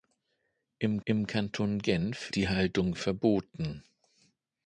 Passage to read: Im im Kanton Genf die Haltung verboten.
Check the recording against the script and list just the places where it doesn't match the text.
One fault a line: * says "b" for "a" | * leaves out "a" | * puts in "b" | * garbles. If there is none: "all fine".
all fine